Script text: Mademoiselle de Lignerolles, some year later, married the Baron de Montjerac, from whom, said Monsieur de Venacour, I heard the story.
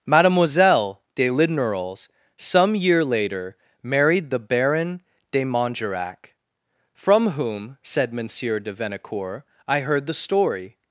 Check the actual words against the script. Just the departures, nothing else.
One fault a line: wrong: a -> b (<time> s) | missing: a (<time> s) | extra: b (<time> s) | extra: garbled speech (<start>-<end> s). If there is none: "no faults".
no faults